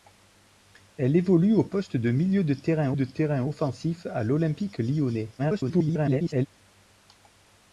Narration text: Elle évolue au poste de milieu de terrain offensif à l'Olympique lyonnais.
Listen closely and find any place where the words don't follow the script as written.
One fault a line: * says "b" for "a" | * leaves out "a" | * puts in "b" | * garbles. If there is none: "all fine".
* puts in "de terrain"
* garbles